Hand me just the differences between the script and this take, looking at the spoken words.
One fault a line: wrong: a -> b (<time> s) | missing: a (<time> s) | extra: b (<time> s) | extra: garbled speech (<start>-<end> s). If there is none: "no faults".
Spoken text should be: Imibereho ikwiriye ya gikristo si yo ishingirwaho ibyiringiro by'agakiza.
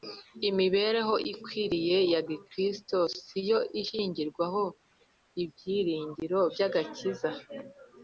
no faults